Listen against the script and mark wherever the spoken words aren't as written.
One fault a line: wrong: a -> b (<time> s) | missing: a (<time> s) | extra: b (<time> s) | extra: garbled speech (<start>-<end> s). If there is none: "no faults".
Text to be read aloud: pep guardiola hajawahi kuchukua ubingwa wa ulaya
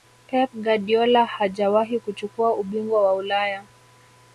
no faults